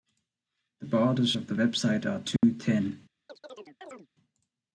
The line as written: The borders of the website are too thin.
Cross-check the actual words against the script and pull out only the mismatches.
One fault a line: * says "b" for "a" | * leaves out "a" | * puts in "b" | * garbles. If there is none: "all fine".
all fine